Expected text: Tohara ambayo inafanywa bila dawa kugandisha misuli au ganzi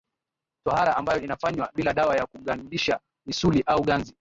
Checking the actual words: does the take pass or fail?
fail